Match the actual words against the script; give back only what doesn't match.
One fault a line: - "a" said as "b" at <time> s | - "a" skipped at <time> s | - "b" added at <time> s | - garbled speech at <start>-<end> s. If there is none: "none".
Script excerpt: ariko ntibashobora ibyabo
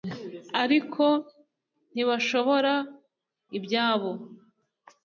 none